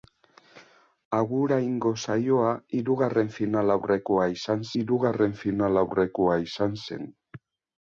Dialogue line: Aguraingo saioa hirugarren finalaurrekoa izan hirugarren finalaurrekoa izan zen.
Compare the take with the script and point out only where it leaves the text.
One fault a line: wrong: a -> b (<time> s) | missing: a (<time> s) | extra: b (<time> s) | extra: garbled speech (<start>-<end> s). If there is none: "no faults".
no faults